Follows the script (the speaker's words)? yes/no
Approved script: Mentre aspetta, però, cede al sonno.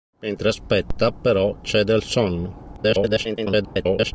no